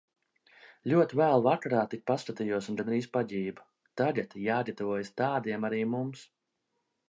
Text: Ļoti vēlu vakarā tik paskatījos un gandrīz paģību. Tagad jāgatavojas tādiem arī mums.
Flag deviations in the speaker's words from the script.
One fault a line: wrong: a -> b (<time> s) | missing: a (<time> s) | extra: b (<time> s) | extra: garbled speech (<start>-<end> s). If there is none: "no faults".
no faults